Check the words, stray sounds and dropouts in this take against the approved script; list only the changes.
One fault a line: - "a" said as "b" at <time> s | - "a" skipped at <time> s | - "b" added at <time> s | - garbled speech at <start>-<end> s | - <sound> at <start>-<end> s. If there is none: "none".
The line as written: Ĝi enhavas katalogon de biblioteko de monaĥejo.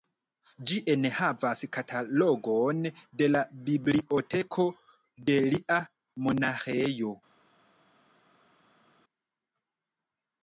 - "la" added at 3.3 s
- "lia" added at 5.5 s